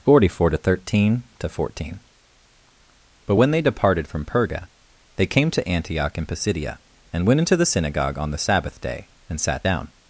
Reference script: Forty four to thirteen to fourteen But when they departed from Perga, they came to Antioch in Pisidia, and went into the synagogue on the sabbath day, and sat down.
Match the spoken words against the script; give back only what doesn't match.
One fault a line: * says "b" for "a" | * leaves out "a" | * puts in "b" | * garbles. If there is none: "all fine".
all fine